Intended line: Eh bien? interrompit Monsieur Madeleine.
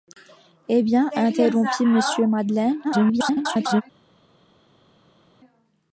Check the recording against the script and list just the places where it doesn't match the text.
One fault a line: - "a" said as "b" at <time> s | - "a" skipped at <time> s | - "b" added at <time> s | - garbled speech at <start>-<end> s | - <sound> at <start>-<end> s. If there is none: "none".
- garbled speech at 2.8-3.8 s